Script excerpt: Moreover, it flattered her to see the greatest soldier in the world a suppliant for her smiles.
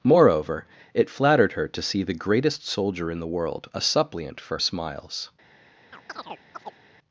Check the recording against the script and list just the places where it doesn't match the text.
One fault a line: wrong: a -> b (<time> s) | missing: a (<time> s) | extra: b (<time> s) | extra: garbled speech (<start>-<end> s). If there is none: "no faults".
missing: her (4.6 s)